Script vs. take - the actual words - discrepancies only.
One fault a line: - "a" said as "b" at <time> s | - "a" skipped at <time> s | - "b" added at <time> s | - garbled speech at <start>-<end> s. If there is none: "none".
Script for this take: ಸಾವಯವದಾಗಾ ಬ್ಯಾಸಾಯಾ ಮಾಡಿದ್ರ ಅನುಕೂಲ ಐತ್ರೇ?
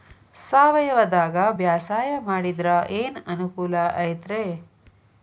- "ಏನ್" added at 3.0 s